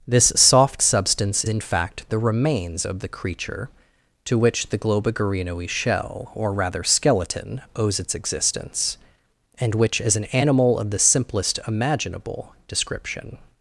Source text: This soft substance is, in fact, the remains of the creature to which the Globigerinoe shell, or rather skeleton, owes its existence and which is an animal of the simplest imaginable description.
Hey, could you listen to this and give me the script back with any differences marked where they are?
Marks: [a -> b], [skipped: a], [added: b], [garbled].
This soft substance [skipped: is,] in fact, the remains of the creature to which the Globigerinoe shell, or rather skeleton, owes its existence and which is an animal of the simplest imaginable description.